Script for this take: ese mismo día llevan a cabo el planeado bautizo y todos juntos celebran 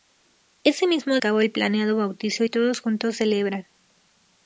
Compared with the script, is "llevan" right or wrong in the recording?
wrong